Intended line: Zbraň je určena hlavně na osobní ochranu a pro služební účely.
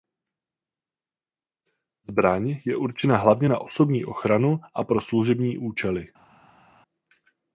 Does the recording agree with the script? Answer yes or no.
yes